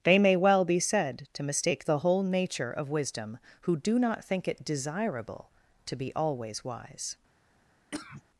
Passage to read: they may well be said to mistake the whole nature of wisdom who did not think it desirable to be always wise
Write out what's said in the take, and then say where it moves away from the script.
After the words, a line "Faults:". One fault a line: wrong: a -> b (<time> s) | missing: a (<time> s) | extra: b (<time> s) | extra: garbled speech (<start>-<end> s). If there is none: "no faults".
they may well be said to mistake the whole nature of wisdom who do not think it desirable to be always wise
Faults:
wrong: did -> do (3.8 s)